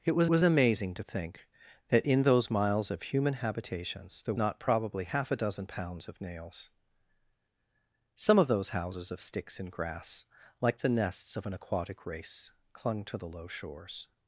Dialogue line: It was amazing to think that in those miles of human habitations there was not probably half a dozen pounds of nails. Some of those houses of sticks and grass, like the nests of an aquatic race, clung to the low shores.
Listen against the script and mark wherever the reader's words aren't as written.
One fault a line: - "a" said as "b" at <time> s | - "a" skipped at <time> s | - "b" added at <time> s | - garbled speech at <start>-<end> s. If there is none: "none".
- "was" added at 0.3 s
- "was" skipped at 4.3 s